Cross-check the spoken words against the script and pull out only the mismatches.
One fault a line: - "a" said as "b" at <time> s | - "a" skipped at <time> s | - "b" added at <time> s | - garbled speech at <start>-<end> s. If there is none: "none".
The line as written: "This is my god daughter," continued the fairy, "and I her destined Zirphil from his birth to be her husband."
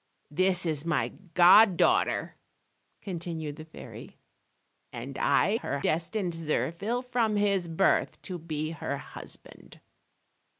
none